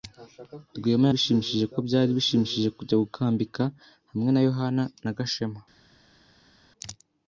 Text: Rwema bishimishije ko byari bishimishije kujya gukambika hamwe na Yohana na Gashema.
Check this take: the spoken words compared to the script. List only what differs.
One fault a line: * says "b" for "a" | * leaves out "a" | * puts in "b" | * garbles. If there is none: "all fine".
all fine